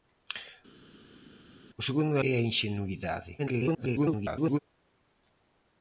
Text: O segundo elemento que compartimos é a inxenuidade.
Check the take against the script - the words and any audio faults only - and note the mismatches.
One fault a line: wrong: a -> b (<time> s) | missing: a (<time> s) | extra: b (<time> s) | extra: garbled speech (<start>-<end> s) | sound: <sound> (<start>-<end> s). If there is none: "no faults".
missing: elemento que compartimos (2.2 s)
extra: garbled speech (3.4-4.6 s)